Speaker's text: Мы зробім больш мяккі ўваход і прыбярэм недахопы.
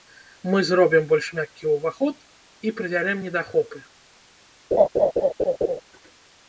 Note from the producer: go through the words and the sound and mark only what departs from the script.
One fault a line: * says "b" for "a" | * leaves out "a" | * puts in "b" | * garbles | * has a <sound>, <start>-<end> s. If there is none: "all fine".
* has a laugh, 4.7-5.8 s